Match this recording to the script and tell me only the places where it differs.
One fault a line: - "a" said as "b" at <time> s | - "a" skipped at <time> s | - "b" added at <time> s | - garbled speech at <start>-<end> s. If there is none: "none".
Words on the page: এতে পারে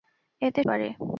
none